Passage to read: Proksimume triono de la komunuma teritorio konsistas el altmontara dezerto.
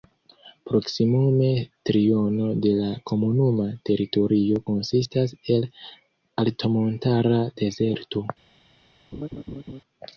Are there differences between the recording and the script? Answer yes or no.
no